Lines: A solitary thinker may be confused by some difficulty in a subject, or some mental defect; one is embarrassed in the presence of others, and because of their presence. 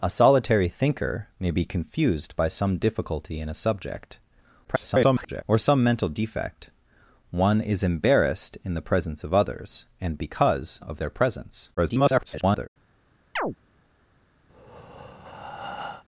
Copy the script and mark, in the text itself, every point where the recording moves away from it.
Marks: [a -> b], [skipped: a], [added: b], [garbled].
A solitary thinker may be confused by some difficulty in a subject, [garbled] or some mental defect; one is embarrassed in the presence of others, and because of their presence. [garbled]